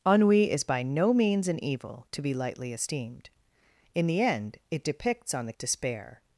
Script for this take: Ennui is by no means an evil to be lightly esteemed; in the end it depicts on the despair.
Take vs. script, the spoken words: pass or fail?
pass